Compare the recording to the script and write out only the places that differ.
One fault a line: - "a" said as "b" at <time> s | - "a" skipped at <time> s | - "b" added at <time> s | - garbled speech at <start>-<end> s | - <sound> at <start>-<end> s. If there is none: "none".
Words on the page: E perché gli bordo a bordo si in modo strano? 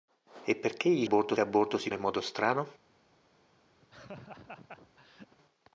- laugh at 3.8-5.4 s